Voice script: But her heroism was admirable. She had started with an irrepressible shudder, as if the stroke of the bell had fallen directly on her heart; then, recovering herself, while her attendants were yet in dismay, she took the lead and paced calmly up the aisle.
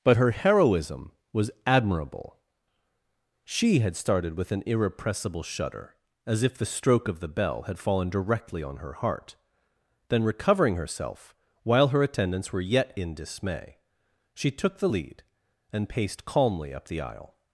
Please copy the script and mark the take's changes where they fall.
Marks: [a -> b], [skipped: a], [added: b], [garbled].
But her heroism was admirable. She had started with an irrepressible shudder, as if the stroke of the bell had fallen directly on her heart; then, recovering herself, while her attendants were yet in dismay, she took the lead and paced calmly up the aisle.